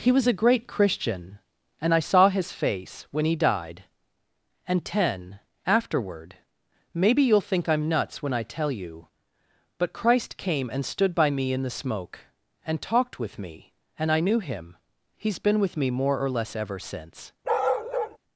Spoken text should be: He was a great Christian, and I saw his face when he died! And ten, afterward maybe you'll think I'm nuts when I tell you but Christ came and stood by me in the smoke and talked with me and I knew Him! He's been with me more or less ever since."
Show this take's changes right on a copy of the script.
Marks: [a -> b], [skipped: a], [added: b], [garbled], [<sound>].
He was a great Christian, and I saw his face when he died! And ten, afterward maybe you'll think I'm nuts when I tell you but Christ came and stood by me in the smoke and talked with me and I knew Him! He's been with me more or less ever since." [bark]